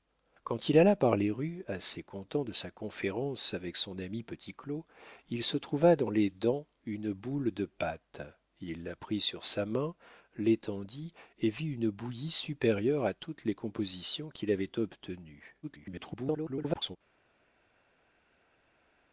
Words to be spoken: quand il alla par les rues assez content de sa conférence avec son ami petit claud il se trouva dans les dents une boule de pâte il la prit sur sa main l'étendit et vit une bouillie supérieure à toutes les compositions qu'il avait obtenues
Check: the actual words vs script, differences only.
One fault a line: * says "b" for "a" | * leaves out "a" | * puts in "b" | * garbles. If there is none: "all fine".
* garbles